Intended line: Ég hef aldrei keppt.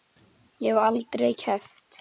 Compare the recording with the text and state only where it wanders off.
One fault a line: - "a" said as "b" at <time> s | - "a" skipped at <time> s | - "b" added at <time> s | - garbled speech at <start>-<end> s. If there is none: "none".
none